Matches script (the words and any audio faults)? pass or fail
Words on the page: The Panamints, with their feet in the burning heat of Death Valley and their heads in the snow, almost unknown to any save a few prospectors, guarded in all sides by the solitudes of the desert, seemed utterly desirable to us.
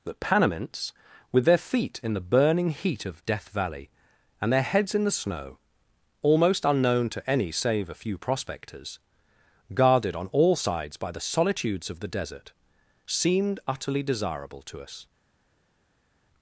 fail